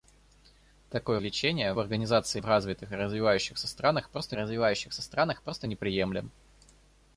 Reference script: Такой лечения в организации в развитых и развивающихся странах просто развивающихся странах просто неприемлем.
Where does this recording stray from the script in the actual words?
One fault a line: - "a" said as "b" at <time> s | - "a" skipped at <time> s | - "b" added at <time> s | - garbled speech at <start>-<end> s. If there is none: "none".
none